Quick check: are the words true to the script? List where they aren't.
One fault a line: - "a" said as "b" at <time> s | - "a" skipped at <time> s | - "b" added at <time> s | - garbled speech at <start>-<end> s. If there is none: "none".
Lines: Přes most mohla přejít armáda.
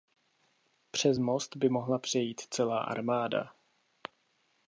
- "by" added at 1.5 s
- "celá" added at 2.5 s